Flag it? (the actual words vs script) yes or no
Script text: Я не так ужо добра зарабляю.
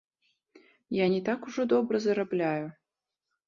no